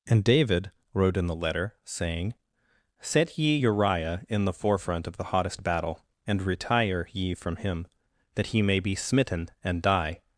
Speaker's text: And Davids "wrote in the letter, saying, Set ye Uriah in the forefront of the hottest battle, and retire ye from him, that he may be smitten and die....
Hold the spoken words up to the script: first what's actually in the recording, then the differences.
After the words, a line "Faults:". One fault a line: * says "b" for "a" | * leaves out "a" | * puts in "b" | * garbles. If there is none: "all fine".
And David "wrote in the letter, saying, Set ye Uriah in the forefront of the hottest battle, and retire ye from him, that he may be smitten and die....
Faults:
* says "David" for "Davids"